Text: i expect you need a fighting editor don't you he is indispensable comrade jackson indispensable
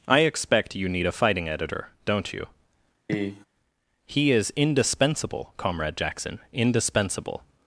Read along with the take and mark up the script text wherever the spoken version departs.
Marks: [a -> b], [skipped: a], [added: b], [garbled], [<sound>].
i expect you need a fighting editor don't you [cough] he is indispensable comrade jackson indispensable